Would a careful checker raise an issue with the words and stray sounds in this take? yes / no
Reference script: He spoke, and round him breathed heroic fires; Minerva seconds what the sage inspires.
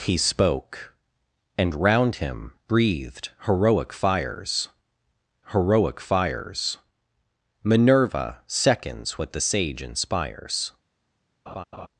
yes